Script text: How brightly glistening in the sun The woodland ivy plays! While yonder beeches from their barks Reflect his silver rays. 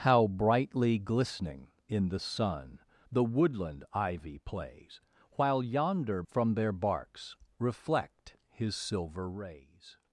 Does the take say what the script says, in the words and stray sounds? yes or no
no